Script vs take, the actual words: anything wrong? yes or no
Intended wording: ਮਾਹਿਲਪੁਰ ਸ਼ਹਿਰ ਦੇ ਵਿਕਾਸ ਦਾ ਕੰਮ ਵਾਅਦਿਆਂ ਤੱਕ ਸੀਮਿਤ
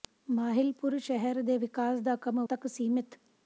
yes